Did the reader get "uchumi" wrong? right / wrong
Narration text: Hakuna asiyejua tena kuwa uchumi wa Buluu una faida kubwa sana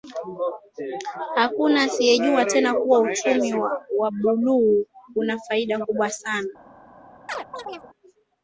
right